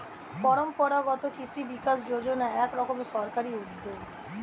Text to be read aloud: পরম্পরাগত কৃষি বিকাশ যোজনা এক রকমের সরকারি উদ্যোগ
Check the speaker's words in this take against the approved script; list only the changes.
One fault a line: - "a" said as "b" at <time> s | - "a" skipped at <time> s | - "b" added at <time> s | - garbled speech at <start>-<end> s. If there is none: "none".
none